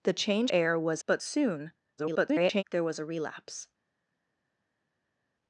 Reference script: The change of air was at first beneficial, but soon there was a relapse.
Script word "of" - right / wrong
wrong